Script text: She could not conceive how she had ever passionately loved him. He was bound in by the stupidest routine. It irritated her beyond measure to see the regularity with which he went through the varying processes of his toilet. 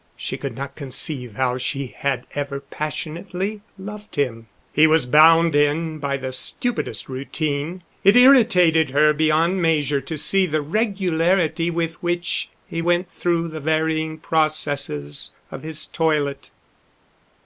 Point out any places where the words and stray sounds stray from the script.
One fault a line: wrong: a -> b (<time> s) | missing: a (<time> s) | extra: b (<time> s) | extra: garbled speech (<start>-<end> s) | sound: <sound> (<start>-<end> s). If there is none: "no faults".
no faults